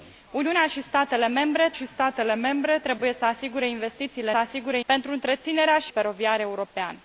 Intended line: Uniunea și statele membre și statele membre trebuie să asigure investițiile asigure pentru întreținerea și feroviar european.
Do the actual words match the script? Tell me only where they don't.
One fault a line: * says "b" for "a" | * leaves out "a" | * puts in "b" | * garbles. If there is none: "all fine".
all fine